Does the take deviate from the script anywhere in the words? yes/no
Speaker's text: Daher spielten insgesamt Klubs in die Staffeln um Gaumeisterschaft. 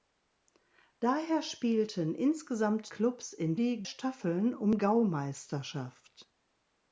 no